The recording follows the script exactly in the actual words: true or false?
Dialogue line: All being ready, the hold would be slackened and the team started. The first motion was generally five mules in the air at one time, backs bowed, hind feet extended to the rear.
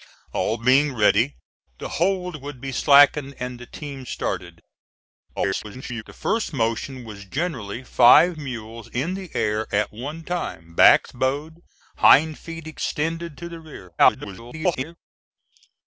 false